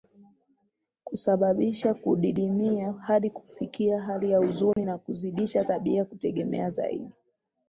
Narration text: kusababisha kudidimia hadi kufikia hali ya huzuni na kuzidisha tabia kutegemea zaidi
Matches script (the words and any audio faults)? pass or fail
fail